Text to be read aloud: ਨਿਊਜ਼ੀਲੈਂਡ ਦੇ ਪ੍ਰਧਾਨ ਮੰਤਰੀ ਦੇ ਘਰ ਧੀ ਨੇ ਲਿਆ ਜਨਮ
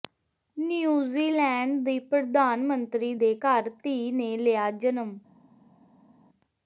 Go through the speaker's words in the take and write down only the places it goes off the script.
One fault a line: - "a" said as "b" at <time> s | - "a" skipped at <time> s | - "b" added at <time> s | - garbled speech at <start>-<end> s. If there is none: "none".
- "ਦੇ" said as "ਦੀ" at 1.9 s